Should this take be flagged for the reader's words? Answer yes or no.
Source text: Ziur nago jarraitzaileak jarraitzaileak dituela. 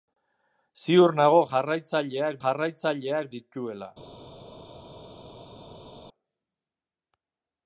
no